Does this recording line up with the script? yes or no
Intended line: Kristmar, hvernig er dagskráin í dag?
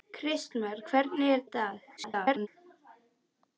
no